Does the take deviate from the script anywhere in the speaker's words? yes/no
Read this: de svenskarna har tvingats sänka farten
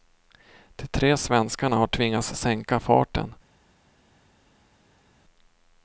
yes